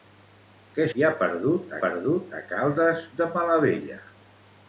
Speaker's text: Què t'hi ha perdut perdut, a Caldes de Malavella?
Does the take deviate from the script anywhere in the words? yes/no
no